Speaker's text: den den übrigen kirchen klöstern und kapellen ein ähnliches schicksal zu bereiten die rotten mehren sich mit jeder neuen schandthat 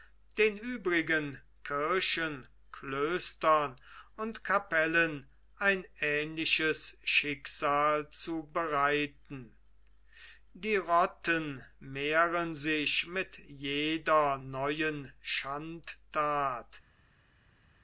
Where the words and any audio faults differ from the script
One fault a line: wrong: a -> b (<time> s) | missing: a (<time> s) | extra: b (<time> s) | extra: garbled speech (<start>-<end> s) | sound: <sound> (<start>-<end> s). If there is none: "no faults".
missing: den (0.6 s)